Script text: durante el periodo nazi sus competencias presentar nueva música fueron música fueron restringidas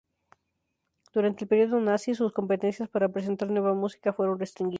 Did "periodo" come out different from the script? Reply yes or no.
no